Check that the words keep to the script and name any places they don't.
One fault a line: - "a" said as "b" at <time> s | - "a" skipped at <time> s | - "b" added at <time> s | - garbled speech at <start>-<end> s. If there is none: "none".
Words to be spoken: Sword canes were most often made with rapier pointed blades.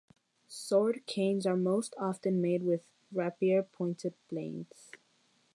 - "were" said as "are" at 1.4 s